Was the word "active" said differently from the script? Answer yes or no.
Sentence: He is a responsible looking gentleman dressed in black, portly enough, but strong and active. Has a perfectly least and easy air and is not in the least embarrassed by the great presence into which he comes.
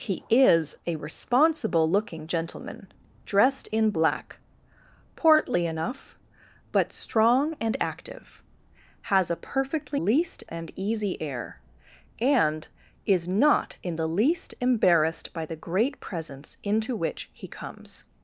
no